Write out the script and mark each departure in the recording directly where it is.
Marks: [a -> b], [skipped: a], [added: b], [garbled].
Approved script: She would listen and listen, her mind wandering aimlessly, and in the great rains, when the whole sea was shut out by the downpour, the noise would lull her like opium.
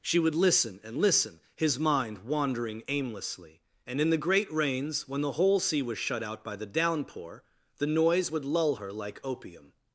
She would listen and listen, [her -> his] mind wandering aimlessly, and in the great rains, when the whole sea was shut out by the downpour, the noise would lull her like opium.